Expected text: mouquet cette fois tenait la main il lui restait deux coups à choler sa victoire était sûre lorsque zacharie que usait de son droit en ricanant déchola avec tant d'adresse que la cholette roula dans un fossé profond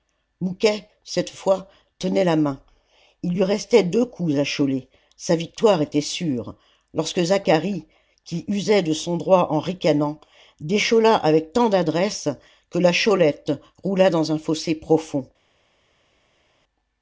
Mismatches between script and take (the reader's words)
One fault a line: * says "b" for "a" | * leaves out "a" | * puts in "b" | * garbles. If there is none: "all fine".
* says "qui" for "que"